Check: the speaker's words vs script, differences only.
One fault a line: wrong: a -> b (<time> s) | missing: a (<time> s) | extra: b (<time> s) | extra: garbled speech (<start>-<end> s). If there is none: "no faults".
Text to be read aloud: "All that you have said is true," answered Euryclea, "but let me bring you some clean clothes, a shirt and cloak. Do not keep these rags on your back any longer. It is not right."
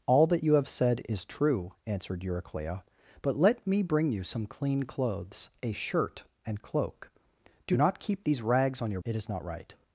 missing: back any longer (9.0 s)